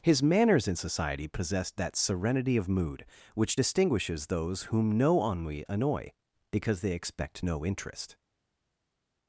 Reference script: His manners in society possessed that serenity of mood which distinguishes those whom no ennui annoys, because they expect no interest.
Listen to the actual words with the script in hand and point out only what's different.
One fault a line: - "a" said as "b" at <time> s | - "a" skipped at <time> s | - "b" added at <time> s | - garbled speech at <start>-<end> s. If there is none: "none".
- "annoys" said as "annoy" at 5.7 s